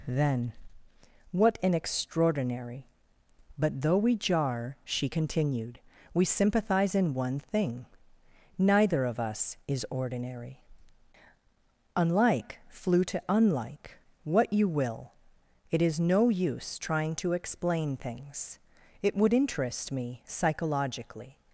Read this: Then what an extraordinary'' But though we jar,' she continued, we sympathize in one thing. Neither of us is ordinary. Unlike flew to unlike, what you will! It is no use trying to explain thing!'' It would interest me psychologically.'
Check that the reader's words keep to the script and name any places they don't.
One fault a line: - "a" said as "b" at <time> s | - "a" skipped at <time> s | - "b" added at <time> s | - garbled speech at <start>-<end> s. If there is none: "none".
- "thing" said as "things" at 17.9 s